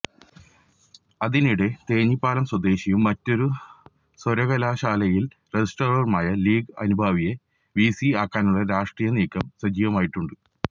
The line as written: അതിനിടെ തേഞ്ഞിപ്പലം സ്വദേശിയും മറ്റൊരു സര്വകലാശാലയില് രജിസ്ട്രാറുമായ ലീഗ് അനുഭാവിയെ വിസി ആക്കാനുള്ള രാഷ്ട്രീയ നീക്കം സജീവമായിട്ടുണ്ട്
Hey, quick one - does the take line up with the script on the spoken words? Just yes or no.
yes